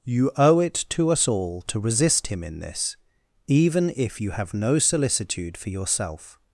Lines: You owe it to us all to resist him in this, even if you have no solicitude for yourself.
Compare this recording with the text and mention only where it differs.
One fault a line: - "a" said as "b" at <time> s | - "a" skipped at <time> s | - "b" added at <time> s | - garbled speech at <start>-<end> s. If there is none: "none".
none